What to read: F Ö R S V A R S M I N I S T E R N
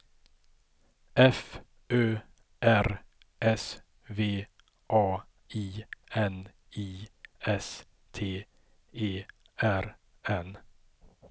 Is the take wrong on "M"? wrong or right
wrong